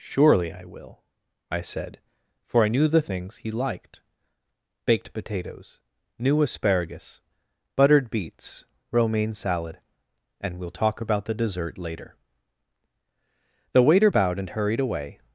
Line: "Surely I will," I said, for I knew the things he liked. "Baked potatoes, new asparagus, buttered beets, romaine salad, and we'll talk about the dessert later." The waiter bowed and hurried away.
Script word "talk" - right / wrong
right